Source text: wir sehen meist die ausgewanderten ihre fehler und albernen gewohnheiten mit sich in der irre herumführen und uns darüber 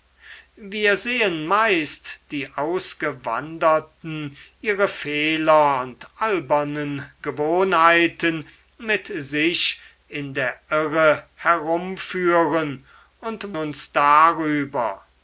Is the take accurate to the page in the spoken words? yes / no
yes